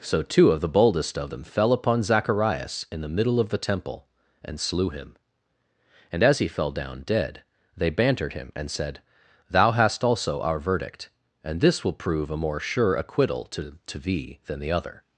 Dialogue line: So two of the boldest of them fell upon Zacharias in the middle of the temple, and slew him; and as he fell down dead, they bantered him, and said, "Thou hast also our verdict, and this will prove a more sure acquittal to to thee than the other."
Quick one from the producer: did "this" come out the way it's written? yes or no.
yes